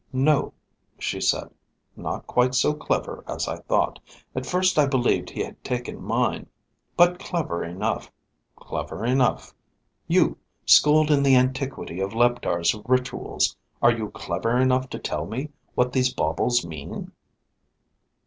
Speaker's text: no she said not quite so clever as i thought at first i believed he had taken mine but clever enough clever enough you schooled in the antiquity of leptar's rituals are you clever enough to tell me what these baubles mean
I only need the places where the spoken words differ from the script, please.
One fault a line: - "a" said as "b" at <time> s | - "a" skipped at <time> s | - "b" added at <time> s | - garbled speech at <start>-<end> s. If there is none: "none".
none